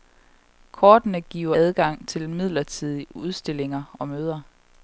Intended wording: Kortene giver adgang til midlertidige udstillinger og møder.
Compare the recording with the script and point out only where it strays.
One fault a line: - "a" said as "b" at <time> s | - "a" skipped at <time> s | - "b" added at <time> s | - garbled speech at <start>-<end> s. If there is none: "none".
none